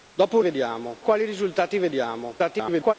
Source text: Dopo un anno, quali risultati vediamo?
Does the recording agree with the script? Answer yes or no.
no